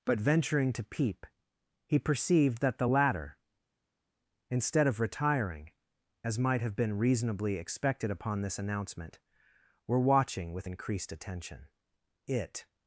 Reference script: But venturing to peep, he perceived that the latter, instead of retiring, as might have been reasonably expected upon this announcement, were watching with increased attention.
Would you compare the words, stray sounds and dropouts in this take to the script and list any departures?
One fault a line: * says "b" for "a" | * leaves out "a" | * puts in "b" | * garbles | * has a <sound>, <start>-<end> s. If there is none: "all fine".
* puts in "It"